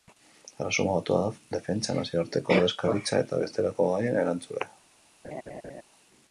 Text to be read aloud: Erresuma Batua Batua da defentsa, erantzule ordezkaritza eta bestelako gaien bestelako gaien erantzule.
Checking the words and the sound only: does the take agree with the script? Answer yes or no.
no